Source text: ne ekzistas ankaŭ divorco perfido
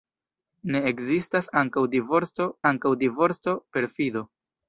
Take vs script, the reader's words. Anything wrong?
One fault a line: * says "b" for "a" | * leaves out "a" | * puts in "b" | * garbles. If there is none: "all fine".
* puts in "ankaŭ divorco"